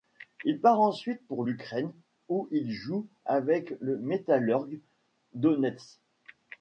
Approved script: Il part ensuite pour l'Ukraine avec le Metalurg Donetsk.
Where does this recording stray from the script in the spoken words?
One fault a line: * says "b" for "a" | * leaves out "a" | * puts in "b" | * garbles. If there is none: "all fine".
* puts in "où il joue"